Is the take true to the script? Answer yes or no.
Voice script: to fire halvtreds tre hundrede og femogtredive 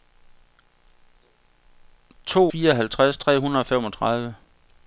yes